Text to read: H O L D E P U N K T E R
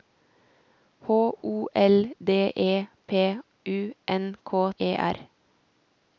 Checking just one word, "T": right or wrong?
wrong